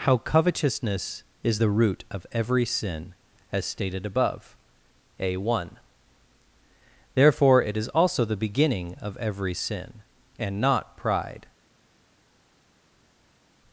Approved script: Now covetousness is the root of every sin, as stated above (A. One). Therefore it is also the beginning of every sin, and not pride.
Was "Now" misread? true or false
true